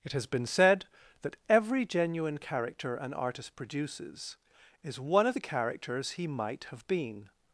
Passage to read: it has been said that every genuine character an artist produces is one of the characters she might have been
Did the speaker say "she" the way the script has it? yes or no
no